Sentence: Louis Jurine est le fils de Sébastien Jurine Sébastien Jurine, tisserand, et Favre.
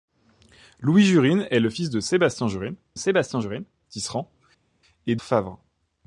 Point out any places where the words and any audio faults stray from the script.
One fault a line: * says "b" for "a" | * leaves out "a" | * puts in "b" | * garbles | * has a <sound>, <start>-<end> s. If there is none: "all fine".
all fine